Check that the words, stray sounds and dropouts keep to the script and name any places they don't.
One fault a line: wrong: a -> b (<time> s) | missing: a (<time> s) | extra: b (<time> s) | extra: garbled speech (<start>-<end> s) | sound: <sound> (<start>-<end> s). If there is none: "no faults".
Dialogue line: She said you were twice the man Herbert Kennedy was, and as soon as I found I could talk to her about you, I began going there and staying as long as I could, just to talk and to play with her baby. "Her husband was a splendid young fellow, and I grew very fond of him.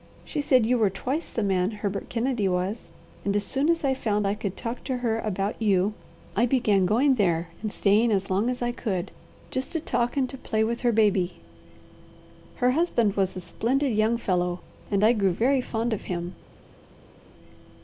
no faults